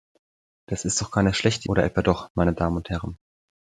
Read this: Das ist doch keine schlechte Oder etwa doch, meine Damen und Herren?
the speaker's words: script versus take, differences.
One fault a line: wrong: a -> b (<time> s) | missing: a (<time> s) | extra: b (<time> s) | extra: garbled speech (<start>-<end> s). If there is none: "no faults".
no faults